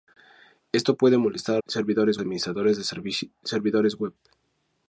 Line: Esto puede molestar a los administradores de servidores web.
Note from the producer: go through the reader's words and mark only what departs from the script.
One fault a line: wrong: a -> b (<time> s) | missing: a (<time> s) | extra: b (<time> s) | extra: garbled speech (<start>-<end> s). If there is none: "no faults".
wrong: los -> servidores (1.7 s)